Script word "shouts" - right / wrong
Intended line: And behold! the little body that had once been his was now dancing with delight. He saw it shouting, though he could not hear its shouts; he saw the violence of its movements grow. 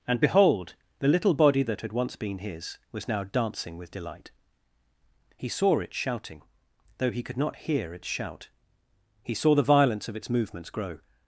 wrong